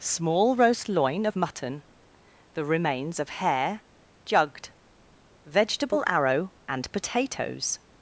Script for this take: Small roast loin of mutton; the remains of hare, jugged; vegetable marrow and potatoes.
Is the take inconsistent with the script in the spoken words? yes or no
yes